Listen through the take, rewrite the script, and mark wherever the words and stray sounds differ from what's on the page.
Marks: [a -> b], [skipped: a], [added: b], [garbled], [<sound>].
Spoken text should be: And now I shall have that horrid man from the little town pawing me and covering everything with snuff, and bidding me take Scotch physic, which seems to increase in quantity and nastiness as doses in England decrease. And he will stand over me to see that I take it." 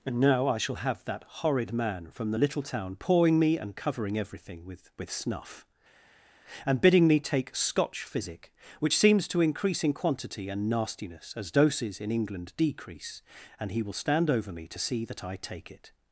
And now I shall have that horrid man from the little town pawing me and covering everything with [added: with] snuff, and bidding me take Scotch physic, which seems to increase in quantity and nastiness as doses in England decrease. And he will stand over me to see that I take it."